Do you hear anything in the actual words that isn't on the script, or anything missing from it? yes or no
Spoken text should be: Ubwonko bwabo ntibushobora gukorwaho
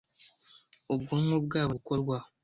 yes